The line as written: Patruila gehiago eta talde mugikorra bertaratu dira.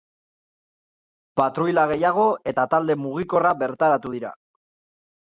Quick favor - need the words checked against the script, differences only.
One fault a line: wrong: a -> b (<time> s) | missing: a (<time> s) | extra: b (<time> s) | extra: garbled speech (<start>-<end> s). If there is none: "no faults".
no faults